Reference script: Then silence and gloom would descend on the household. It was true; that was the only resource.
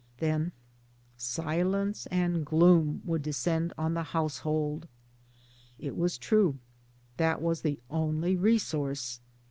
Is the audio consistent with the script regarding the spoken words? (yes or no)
yes